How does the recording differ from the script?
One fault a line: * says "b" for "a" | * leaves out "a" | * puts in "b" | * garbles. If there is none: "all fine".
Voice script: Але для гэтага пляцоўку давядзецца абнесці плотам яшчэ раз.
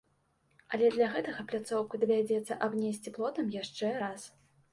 all fine